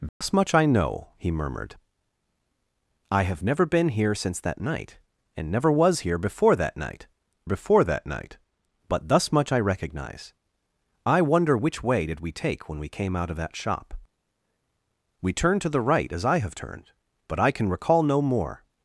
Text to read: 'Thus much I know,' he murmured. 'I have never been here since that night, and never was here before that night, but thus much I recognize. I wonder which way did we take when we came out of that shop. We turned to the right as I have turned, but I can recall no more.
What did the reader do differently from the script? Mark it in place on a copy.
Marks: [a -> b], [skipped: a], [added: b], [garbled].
'Thus much I know,' he murmured. 'I have never been here since that night, and never was here before that night, [added: before that night] but thus much I recognize. I wonder which way did we take when we came out of that shop. We turned to the right as I have turned, but I can recall no more.